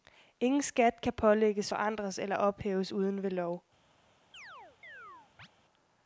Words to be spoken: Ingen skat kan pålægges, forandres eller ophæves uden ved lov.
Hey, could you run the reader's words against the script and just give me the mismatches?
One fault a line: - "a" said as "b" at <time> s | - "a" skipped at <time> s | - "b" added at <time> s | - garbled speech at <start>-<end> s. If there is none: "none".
none